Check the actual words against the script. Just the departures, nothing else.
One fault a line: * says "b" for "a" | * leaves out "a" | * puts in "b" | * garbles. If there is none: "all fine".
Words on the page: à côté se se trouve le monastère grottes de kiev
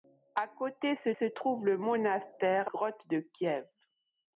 all fine